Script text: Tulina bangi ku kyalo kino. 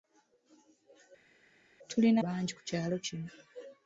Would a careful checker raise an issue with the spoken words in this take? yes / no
no